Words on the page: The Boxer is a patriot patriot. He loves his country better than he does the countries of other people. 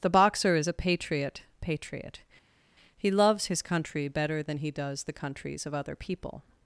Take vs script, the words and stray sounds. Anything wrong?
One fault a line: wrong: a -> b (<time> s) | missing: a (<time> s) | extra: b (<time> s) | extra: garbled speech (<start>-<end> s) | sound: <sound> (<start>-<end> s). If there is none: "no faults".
no faults